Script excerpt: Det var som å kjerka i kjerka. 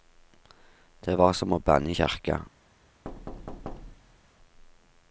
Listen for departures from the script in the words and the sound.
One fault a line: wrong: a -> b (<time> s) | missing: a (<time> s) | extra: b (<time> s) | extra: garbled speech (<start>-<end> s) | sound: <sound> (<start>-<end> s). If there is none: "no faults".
wrong: kjerka -> banne (1.6 s)
sound: thud (3.0-4.3 s)